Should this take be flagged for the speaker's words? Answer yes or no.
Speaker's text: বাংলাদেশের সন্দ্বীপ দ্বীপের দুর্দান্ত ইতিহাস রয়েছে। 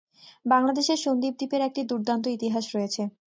yes